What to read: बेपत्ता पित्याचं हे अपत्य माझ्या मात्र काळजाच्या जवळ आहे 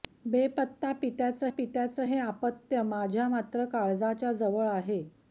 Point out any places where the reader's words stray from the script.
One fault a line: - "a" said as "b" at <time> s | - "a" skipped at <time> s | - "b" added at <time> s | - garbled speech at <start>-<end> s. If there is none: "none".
- "पित्याचं" added at 1.5 s